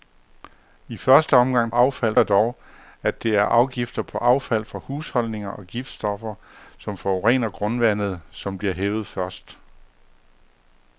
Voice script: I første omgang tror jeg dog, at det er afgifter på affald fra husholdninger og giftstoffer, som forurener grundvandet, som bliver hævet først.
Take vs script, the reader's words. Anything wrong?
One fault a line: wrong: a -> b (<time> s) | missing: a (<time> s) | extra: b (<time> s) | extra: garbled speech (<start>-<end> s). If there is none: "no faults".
wrong: tror -> affald (1.7 s)